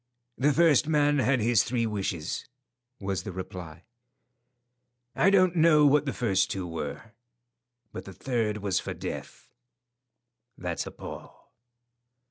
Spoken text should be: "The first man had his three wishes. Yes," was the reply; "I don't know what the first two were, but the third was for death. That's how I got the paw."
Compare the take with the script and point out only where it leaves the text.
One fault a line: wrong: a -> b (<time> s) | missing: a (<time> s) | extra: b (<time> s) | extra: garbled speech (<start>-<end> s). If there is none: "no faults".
missing: Yes (2.5 s)
missing: how I got (10.8 s)